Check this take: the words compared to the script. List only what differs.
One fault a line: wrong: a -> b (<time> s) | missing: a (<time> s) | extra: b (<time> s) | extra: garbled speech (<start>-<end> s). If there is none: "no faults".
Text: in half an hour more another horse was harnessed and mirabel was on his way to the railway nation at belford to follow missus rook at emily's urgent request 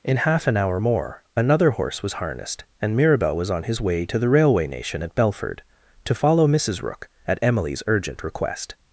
no faults